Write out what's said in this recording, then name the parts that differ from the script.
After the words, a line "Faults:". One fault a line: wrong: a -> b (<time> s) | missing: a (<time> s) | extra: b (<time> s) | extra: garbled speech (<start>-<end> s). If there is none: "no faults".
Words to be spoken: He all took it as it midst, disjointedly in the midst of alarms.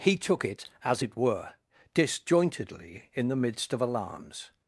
He took it as it were, disjointedly in the midst of alarms.
Faults:
missing: all (0.2 s)
wrong: midst -> were (1.2 s)